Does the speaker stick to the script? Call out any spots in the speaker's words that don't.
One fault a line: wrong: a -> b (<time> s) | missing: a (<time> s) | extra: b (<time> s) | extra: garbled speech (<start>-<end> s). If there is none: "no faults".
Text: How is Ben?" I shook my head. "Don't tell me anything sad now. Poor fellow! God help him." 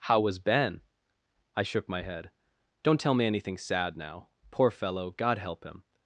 wrong: is -> was (0.2 s)